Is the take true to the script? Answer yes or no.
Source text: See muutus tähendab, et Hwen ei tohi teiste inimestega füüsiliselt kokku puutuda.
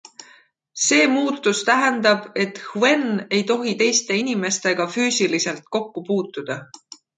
yes